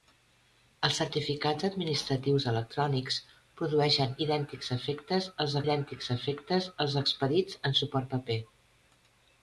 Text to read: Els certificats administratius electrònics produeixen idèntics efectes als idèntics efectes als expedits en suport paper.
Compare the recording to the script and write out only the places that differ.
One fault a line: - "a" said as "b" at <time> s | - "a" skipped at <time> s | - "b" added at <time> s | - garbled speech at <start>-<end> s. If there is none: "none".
none